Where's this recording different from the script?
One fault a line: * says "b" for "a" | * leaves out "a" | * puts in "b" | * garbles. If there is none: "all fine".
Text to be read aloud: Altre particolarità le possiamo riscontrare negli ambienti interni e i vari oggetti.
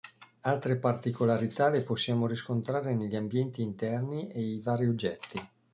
all fine